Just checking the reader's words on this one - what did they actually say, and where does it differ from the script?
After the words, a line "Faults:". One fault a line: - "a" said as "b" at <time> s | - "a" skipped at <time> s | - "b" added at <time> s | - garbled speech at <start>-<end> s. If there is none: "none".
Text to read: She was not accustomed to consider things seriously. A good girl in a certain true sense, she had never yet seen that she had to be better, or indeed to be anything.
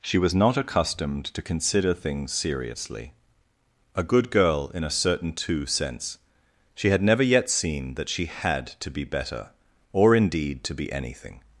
She was not accustomed to consider things seriously. A good girl in a certain two sense, she had never yet seen that she had to be better, or indeed to be anything.
Faults:
- "true" said as "two" at 5.3 s